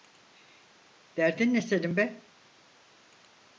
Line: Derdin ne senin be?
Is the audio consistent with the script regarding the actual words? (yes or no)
yes